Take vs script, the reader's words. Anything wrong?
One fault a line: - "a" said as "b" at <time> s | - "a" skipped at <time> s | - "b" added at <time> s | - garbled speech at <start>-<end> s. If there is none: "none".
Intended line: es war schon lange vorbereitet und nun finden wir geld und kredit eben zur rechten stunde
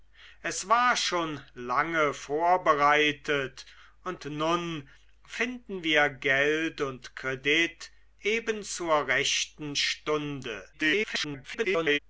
- garbled speech at 10.7-12.0 s